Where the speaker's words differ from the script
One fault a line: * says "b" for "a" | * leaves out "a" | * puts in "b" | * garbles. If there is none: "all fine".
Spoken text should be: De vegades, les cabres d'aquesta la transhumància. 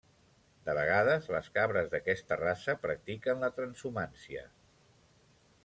* puts in "raça practiquen"